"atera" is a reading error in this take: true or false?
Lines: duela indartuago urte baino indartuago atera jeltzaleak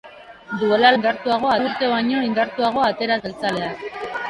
false